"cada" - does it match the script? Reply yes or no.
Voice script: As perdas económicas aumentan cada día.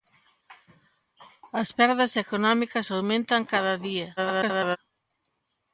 yes